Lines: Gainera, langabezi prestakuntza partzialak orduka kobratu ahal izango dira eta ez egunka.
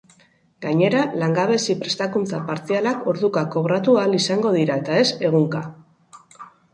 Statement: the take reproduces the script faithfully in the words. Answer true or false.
true